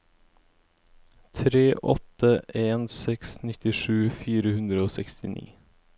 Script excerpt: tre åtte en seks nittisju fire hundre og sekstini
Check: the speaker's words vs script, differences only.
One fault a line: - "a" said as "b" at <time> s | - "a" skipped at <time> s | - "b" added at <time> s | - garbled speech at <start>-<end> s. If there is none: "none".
none